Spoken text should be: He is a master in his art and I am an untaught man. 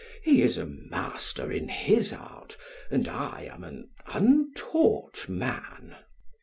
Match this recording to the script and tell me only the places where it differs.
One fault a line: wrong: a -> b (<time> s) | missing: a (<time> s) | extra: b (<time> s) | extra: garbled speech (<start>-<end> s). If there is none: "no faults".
no faults